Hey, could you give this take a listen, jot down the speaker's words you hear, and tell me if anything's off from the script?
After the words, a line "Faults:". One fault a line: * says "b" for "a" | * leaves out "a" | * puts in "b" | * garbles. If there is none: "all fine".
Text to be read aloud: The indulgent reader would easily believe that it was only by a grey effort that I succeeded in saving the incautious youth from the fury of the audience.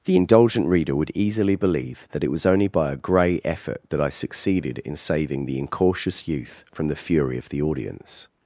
The indulgent reader would easily believe that it was only by a grey effort that I succeeded in saving the incautious youth from the fury of the audience.
Faults:
all fine